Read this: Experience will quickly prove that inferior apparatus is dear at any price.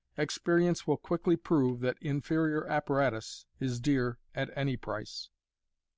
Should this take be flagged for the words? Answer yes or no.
no